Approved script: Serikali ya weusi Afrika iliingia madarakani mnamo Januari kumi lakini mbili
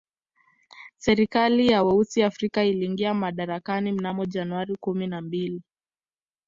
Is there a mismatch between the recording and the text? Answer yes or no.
yes